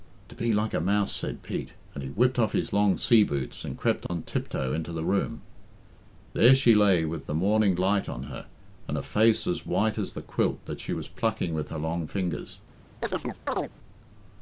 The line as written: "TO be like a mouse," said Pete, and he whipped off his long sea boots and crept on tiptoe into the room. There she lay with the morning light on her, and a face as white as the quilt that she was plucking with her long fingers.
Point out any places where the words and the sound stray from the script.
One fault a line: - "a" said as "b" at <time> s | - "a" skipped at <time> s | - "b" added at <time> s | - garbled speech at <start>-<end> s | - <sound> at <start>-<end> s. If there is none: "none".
- dropout at 4.1-4.1 s
- chirp at 13.0-13.7 s